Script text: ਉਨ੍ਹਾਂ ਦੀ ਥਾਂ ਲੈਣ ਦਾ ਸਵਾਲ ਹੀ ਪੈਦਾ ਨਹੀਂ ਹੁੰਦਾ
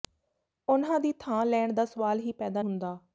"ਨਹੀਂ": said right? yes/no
no